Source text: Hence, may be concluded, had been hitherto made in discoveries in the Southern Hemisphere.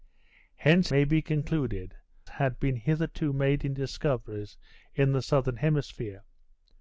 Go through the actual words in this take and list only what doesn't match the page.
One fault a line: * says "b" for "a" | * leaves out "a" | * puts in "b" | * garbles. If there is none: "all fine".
all fine